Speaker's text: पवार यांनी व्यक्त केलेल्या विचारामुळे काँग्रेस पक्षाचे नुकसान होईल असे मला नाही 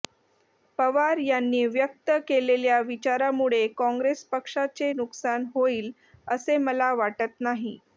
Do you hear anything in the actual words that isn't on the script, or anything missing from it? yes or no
yes